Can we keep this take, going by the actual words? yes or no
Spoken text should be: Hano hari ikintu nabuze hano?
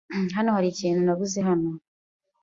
yes